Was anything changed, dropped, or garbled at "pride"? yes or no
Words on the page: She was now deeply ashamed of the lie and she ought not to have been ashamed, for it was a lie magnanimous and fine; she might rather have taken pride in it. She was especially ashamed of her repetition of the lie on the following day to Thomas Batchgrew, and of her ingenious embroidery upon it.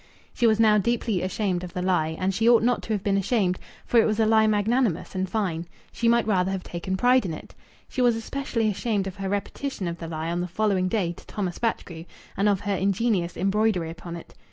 no